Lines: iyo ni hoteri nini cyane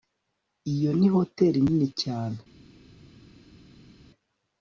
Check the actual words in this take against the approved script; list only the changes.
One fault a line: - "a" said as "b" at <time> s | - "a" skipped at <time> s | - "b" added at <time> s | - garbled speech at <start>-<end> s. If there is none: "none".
none